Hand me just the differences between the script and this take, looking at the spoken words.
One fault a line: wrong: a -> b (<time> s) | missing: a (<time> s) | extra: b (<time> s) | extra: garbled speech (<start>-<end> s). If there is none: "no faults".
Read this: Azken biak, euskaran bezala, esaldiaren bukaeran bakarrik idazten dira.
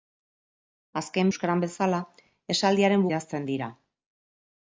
missing: biak (1.3 s)
missing: bukaeran bakarrik (3.1 s)